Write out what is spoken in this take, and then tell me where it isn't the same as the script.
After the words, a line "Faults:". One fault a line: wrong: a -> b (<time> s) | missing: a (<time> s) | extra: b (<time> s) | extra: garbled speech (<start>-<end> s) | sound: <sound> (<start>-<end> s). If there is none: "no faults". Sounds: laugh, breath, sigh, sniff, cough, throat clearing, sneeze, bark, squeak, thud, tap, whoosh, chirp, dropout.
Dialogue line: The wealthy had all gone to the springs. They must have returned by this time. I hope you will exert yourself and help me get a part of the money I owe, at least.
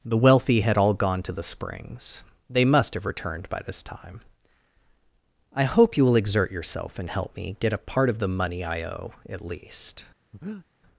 The wealthy had all gone to the springs. They must have returned by this time. I hope you will exert yourself and help me get a part of the money I owe, at least.
Faults:
sound: breath (10.3-10.7 s)